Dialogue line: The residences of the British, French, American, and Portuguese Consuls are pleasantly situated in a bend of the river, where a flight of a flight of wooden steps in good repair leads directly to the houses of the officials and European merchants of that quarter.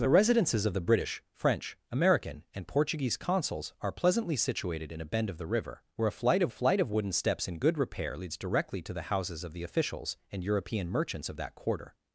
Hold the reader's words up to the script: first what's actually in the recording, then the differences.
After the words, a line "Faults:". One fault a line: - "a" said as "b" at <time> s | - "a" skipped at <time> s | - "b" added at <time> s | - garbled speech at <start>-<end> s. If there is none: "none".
The residences of the British, French, American, and Portuguese Consuls are pleasantly situated in a bend of the river, where a flight of a flight of wooden steps in good repair leads directly to the houses of the officials and European merchants of that quarter.
Faults:
none